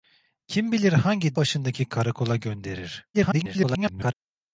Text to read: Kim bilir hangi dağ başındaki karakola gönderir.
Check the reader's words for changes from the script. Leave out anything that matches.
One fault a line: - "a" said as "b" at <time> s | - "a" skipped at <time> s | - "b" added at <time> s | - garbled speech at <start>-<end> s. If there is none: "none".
- "dağ" skipped at 1.4 s
- garbled speech at 3.1-4.1 s